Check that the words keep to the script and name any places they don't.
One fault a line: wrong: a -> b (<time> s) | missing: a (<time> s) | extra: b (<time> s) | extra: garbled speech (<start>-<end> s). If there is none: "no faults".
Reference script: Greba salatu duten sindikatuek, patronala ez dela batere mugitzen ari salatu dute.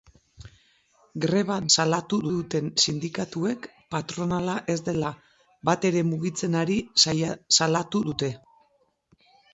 no faults